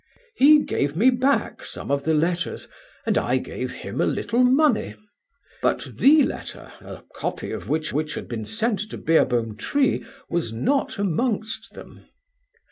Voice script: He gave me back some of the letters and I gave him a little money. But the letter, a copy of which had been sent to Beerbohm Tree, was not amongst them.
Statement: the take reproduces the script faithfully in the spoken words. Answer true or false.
false